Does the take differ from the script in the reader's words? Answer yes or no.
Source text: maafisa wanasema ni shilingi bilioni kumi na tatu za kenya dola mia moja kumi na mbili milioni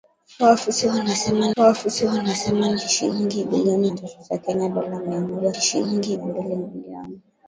yes